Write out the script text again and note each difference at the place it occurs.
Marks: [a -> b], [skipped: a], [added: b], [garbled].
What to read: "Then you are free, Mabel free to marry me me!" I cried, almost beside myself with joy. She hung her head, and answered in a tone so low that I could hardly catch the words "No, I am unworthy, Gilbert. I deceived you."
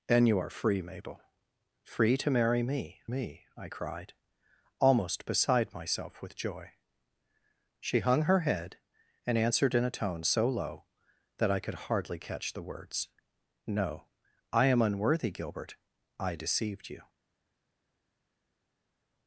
"Then you are free, Mabel free to marry me me!" I cried, almost beside myself with joy. She hung her head, and answered in a tone so low that I could hardly catch the words "No, I am unworthy, Gilbert. I deceived you."